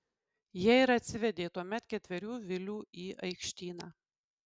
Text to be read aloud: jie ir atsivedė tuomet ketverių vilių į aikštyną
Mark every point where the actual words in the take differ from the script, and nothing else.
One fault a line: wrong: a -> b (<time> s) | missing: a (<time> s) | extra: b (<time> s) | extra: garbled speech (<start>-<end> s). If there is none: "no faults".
no faults